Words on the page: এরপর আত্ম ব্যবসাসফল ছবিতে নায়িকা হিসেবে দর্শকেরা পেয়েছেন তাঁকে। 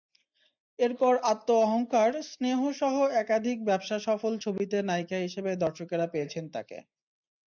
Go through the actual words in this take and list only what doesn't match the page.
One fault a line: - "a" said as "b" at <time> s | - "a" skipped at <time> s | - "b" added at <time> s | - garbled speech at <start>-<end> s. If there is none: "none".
- "অহংকার স্নেহসহ একাধিক" added at 1.6 s